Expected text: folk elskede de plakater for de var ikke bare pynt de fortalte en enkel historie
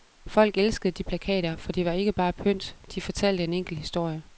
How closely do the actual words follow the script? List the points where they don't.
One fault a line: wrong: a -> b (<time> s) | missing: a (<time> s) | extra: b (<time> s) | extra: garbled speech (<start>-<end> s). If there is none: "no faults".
no faults